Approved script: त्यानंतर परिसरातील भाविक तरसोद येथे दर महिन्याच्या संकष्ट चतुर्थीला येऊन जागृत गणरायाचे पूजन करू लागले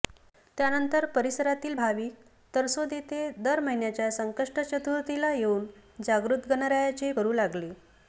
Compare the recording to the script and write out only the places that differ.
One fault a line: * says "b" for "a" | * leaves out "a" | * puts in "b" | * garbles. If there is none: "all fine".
* leaves out "पूजन"